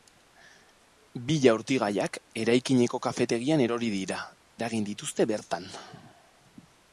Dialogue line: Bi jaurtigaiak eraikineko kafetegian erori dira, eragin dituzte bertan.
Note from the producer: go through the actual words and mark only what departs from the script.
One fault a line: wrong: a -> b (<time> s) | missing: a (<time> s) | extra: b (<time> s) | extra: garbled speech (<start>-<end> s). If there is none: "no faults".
no faults